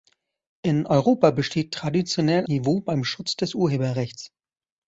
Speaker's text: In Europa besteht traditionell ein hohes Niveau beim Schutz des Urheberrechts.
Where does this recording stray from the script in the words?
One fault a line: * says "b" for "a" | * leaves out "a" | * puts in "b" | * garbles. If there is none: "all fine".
* leaves out "ein hohes"